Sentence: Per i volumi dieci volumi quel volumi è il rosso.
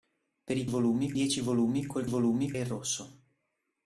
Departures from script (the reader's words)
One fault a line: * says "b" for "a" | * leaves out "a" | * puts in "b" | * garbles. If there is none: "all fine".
all fine